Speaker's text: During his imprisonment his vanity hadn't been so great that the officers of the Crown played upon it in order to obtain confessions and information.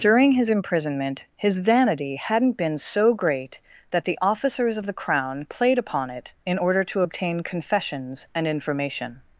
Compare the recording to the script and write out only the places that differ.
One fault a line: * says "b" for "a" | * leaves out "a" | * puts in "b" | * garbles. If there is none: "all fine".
all fine